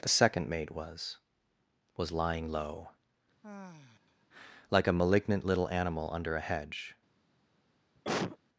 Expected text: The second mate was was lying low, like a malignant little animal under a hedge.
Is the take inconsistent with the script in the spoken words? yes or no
no